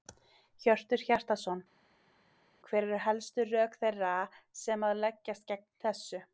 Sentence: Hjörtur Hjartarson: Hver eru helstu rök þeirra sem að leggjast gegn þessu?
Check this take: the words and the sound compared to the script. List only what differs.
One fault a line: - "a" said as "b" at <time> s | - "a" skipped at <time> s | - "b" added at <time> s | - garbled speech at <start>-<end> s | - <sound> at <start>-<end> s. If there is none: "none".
none